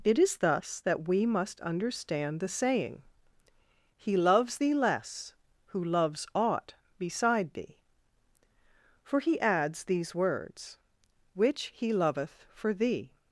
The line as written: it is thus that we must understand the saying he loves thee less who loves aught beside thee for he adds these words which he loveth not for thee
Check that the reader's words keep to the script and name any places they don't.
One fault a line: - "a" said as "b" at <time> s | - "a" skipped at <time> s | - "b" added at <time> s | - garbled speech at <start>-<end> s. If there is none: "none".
- "not" skipped at 12.5 s